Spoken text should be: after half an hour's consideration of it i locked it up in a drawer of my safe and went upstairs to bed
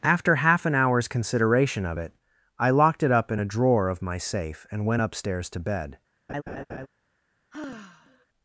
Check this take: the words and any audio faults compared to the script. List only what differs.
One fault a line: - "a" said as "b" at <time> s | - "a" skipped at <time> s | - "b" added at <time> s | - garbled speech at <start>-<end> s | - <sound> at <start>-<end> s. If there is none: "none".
- laugh at 6.3-6.9 s
- sigh at 7.5-8.3 s